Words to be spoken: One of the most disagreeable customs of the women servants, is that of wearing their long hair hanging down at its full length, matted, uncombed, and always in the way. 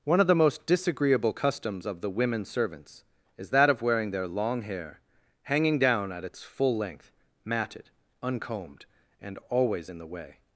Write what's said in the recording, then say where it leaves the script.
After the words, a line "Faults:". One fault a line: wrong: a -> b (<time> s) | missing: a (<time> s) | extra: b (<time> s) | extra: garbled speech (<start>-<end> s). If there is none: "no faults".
One of the most disagreeable customs of the women servants, is that of wearing their long hair hanging down at its full length, matted, uncombed, and always in the way.
Faults:
no faults